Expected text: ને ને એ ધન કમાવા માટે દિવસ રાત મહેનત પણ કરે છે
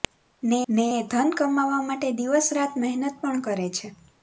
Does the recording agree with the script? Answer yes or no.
yes